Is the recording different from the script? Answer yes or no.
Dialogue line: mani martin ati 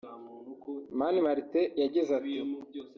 yes